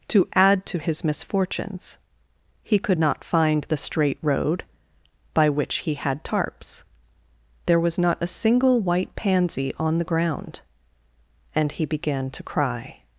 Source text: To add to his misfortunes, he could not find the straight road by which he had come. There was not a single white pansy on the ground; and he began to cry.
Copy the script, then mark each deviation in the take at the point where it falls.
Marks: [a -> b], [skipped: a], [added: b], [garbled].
To add to his misfortunes, he could not find the straight road by which he had [come. -> tarps] There was not a single white pansy on the ground; and he began to cry.